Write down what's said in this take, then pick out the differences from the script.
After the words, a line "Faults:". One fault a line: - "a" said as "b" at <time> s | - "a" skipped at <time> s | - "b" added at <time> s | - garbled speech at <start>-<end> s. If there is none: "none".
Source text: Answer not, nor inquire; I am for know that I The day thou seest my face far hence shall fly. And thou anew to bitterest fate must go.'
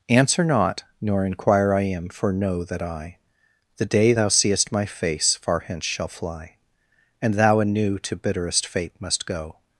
Answer not, nor inquire; I am for know that I The day thou seest my face far hence shall fly. And thou anew to bitterest fate must go.'
Faults:
none